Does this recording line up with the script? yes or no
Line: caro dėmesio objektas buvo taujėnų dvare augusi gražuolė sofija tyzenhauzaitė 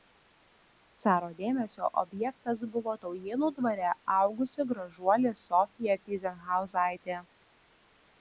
yes